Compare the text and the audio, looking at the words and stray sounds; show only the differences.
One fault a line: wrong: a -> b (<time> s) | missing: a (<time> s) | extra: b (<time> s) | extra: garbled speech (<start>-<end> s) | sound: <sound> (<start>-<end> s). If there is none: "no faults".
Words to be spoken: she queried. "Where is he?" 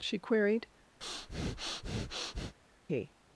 missing: Where is (0.7 s)
sound: breath (1.0-2.5 s)